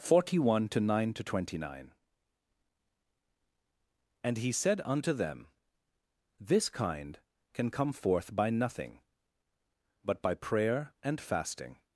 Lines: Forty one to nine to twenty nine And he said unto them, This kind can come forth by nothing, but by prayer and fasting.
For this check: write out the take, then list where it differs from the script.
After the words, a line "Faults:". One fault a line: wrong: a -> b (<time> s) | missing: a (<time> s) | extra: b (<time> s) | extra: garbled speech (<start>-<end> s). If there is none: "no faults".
Forty one to nine to twenty nine And he said unto them, This kind can come forth by nothing, but by prayer and fasting.
Faults:
no faults